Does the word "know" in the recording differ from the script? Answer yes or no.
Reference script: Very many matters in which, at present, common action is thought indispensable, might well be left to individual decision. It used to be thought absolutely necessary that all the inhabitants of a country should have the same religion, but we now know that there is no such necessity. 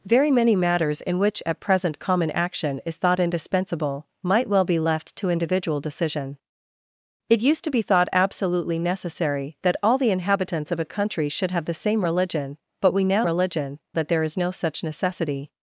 yes